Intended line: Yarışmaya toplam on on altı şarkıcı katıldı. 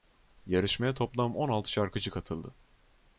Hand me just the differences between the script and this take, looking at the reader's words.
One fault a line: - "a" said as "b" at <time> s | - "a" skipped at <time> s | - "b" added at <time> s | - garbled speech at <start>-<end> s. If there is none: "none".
- "on" skipped at 1.5 s